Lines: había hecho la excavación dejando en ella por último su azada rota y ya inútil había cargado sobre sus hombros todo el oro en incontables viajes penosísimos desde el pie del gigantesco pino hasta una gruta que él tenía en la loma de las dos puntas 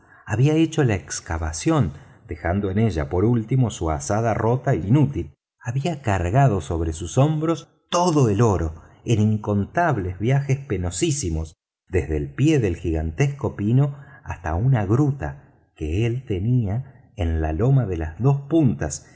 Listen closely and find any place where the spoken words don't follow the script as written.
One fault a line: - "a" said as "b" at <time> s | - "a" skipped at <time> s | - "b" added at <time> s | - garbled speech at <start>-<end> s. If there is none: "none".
- "ya" skipped at 4.8 s